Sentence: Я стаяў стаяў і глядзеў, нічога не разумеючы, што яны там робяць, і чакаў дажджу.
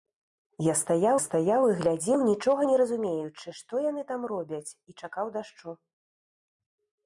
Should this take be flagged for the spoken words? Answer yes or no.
no